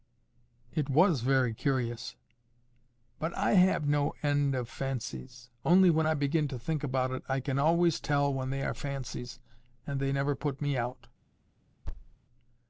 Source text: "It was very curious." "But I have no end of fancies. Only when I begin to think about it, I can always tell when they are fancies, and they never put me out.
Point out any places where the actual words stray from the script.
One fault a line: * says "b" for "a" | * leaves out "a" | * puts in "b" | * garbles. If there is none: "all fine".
all fine